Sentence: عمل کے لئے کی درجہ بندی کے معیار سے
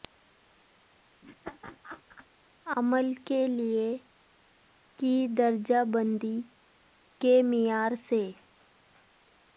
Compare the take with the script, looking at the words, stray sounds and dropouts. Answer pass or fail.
fail